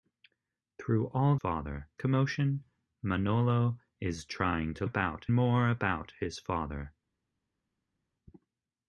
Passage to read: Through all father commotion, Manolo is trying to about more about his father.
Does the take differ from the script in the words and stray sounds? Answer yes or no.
no